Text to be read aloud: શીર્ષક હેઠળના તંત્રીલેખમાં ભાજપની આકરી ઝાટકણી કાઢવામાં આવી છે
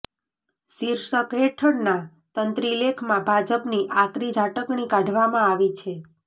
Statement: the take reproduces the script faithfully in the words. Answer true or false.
true